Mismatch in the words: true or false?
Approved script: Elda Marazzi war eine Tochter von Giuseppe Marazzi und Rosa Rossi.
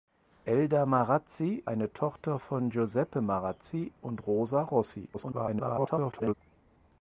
true